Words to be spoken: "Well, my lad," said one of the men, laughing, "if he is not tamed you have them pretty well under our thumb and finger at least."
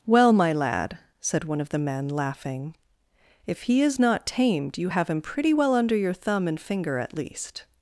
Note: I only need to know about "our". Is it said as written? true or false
false